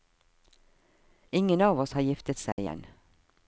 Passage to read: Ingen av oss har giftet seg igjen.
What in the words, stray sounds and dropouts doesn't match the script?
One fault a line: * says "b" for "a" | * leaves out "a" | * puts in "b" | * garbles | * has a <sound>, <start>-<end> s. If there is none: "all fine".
* has a dropout, 2.5-2.6 s